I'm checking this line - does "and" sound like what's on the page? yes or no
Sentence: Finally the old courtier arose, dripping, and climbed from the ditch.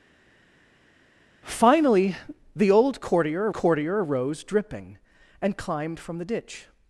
yes